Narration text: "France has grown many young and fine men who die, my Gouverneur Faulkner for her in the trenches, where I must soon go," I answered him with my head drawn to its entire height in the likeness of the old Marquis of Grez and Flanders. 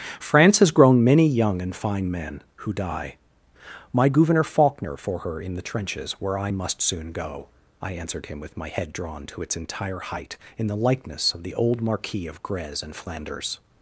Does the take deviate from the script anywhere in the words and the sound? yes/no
no